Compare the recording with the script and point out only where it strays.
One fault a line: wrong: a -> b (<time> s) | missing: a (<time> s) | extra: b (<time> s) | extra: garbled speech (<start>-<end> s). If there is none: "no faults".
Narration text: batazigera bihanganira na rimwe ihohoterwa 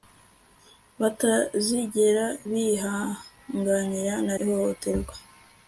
missing: rimwe (4.3 s)